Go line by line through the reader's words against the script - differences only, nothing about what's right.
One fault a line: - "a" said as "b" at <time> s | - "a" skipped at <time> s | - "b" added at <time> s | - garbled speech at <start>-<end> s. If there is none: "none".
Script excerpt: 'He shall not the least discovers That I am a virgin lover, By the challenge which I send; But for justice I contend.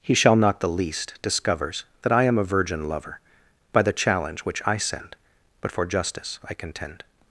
none